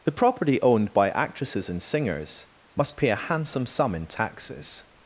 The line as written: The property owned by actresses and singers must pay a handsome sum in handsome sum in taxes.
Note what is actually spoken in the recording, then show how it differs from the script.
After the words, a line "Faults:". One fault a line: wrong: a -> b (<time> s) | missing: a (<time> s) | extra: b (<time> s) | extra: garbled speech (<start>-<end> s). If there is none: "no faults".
The property owned by actresses and singers must pay a handsome sum in taxes.
Faults:
missing: handsome sum in (4.1 s)